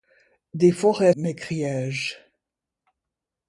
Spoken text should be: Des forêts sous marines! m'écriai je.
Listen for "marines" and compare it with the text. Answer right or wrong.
wrong